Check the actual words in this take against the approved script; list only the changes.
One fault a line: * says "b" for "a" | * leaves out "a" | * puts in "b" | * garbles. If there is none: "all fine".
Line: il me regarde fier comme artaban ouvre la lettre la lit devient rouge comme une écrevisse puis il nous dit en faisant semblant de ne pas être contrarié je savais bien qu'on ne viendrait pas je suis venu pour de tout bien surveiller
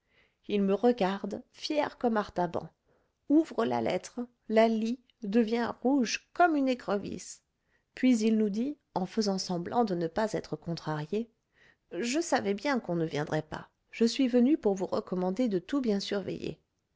* puts in "vous recommander"